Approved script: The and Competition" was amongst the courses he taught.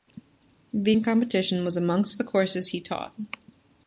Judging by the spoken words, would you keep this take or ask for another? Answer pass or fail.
pass